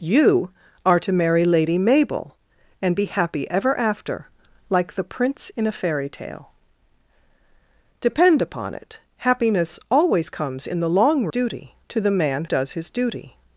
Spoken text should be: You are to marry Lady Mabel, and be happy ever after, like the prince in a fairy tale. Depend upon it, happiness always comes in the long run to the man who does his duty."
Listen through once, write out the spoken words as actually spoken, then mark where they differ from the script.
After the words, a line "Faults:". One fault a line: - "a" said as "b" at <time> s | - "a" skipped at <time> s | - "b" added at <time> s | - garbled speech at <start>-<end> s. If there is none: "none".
You are to marry Lady Mabel, and be happy ever after, like the prince in a fairy tale. Depend upon it, happiness always comes in the long duty to the man does his duty."
Faults:
- "run" said as "duty" at 11.3 s
- "who" skipped at 12.4 s